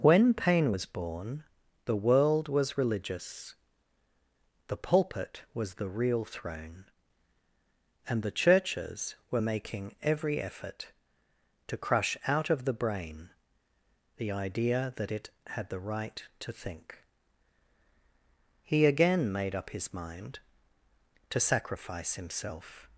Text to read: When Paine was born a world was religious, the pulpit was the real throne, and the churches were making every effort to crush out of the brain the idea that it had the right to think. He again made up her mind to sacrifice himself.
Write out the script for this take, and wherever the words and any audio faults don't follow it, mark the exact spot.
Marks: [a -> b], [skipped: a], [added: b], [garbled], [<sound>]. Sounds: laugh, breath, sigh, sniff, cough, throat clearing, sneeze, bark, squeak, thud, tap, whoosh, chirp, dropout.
When Paine was born [a -> the] world was religious, the pulpit was the real throne, and the churches were making every effort to crush out of the brain the idea that it had the right to think. He again made up [her -> his] mind to sacrifice himself.